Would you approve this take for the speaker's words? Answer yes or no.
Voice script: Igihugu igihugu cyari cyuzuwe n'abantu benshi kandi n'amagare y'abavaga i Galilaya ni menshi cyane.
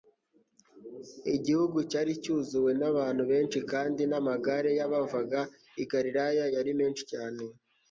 no